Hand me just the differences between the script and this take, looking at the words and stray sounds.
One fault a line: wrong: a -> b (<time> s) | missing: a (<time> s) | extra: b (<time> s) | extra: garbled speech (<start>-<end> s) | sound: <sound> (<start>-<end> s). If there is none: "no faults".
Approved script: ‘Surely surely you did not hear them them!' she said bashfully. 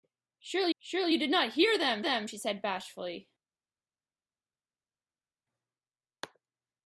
no faults